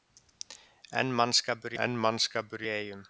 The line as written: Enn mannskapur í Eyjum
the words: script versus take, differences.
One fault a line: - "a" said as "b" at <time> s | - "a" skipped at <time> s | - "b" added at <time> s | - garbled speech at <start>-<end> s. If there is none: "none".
- "enn mannskapur" added at 1.8 s